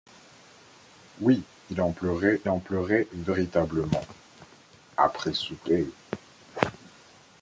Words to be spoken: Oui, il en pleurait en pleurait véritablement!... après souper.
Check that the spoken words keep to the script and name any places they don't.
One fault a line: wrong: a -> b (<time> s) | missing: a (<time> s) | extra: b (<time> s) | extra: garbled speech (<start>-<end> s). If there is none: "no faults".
no faults